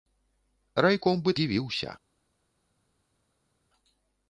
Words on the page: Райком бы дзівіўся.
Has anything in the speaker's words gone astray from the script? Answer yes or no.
no